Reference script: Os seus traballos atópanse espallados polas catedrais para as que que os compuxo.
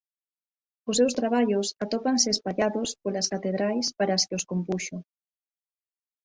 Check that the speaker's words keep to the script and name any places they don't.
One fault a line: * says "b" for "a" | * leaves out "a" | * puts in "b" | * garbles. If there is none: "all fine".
* leaves out "que"